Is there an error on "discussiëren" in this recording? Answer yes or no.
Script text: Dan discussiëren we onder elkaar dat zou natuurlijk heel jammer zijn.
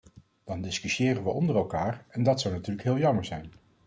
no